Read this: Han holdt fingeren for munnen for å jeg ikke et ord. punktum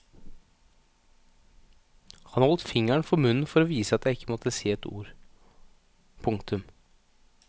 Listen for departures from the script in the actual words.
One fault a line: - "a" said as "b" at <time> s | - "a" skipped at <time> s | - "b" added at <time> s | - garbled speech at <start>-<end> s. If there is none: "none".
- "vise at" added at 3.7 s
- "måtte si" added at 4.3 s